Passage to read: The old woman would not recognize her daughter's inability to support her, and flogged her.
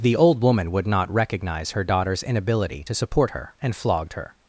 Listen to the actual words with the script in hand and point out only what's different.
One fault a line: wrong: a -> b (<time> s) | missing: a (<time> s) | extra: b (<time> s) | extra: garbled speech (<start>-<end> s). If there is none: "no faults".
no faults